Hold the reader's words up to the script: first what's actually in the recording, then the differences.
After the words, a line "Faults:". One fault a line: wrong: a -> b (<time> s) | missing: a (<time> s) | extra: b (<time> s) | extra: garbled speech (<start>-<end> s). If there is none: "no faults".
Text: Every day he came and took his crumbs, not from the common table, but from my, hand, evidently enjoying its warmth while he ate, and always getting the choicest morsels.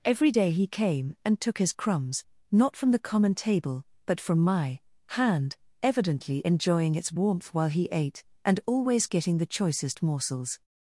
Every day he came and took his crumbs, not from the common table, but from my, hand, evidently enjoying its warmth while he ate, and always getting the choicest morsels.
Faults:
no faults